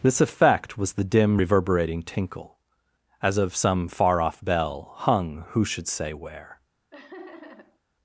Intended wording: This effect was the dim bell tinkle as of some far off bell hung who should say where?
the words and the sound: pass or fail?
fail